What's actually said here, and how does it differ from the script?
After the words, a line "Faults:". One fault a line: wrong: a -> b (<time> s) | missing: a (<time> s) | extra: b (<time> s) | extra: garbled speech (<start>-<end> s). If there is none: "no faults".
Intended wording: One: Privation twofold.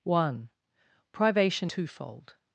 One: Privation twofold.
Faults:
no faults